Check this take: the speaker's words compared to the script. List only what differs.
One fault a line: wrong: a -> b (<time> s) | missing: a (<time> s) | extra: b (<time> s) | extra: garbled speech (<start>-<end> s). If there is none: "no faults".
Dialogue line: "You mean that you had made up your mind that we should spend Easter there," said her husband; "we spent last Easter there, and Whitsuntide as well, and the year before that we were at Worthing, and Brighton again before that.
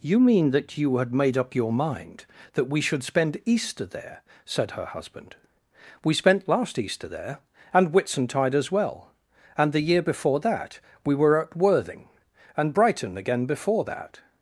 no faults